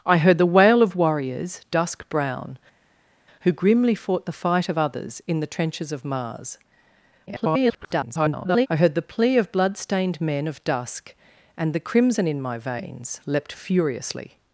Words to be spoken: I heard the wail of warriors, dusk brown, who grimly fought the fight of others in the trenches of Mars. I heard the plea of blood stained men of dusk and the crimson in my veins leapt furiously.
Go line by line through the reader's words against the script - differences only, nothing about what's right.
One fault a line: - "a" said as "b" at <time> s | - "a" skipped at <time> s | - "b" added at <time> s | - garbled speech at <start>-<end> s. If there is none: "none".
- garbled speech at 7.3-8.7 s